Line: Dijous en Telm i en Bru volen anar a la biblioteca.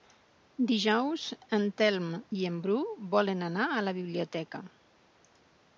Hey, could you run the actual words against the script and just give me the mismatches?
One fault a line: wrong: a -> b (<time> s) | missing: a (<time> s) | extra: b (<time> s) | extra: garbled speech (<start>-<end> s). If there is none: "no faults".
no faults